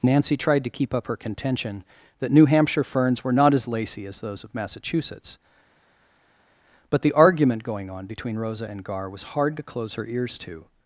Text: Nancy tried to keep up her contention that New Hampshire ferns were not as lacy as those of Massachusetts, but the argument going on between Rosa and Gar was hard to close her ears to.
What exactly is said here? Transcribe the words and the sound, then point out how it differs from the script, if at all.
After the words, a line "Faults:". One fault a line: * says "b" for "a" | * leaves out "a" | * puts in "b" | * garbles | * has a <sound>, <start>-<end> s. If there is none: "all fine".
Nancy tried to keep up her contention that New Hampshire ferns were not as lacy as those of Massachusetts, but the argument going on between Rosa and Gar was hard to close her ears to.
Faults:
all fine